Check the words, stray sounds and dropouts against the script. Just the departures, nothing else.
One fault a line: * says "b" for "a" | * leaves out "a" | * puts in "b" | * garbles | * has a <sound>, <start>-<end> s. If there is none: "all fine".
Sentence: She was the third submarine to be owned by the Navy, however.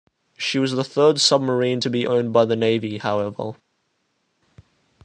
all fine